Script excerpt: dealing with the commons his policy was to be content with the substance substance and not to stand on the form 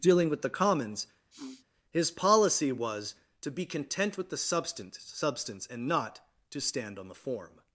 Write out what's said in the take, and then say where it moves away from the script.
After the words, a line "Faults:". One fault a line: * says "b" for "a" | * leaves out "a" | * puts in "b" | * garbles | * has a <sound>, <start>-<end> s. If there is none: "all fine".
dealing with the commons his policy was to be content with the substance substance and not to stand on the form
Faults:
* has a sniff, 1.3-1.7 s